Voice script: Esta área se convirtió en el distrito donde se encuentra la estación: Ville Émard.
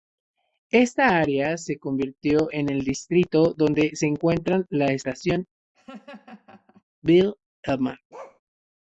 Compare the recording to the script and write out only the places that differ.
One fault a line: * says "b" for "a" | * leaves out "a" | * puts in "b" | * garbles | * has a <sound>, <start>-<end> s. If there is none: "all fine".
* has a laugh, 5.7-6.8 s
* has a bark, 8.1-8.4 s